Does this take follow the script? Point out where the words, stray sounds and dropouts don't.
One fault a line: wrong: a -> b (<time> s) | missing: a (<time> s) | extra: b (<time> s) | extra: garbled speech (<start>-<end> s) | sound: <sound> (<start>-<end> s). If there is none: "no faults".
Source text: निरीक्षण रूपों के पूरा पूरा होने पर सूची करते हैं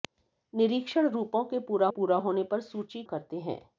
no faults